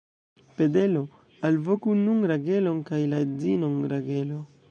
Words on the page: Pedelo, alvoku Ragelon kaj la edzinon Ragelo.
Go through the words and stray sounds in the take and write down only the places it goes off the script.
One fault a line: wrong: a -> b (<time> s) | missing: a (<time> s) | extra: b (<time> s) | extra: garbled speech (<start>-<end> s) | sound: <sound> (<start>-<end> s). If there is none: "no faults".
extra: nun (2.0 s)